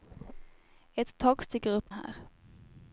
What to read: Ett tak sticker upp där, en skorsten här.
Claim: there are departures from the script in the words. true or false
true